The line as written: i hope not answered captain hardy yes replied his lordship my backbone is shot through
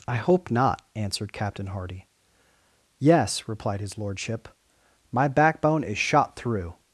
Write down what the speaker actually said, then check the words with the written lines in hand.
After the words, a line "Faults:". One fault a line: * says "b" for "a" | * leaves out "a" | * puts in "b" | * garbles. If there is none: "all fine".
i hope not answered captain hardy yes replied his lordship my backbone is shot through
Faults:
all fine